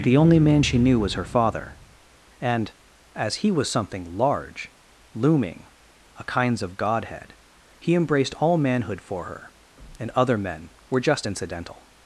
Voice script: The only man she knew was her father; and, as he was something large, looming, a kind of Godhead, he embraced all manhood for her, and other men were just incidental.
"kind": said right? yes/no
no